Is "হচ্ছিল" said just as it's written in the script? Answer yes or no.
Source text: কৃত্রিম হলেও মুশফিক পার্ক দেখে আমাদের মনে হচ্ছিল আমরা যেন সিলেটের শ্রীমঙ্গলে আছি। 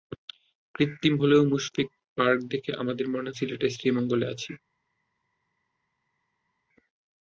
no